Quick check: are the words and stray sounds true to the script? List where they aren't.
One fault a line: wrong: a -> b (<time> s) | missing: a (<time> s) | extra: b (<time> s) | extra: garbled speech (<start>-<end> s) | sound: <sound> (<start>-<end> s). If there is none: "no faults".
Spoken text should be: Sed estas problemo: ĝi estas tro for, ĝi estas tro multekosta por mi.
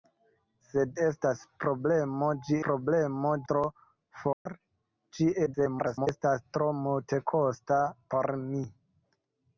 wrong: estas -> problemo (2.7 s)
sound: dropout (4.3-4.5 s)
extra: garbled speech (5.5-6.1 s)